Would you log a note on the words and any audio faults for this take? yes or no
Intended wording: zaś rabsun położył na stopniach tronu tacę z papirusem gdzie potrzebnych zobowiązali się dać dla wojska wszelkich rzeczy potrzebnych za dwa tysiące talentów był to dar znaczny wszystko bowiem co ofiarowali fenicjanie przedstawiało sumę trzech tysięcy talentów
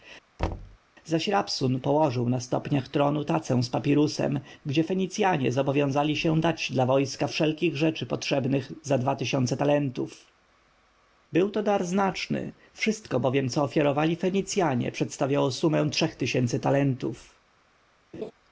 yes